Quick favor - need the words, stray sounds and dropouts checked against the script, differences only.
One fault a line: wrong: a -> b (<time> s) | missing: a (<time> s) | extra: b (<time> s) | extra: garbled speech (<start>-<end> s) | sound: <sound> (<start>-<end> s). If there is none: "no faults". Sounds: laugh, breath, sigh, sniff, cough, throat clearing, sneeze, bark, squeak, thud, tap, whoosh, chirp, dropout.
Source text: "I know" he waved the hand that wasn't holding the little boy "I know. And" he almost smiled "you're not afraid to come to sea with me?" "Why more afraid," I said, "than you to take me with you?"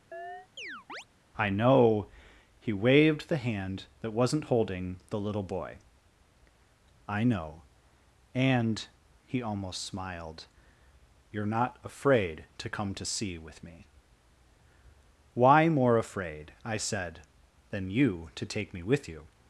sound: chirp (0.1-1.1 s)